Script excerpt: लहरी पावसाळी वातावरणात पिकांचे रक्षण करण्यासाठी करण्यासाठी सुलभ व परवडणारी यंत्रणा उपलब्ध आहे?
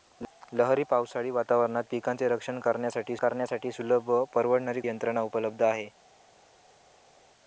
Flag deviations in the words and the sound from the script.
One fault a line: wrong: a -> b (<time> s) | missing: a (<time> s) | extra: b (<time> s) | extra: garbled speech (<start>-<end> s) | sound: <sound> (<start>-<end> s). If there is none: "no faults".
no faults